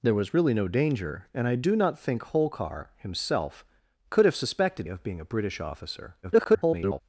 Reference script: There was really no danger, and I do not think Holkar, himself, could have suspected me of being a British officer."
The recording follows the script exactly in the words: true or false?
false